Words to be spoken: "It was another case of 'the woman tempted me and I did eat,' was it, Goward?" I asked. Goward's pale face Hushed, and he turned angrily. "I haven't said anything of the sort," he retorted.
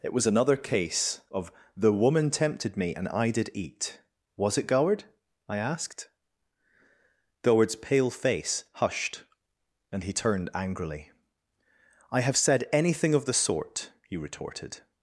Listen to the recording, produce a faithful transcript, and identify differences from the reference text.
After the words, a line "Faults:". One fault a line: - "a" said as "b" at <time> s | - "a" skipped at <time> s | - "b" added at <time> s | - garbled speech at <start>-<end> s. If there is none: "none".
"It was another case of 'the woman tempted me and I did eat,' was it, Goward?" I asked. Goward's pale face Hushed, and he turned angrily. "I have said anything of the sort," he retorted.
Faults:
- "haven't" said as "have" at 12.2 s